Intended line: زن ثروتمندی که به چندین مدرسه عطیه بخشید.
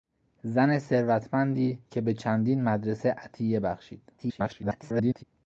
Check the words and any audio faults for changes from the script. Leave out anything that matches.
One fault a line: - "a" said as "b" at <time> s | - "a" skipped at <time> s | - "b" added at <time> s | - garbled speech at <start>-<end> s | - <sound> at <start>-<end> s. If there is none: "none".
- garbled speech at 4.2-5.2 s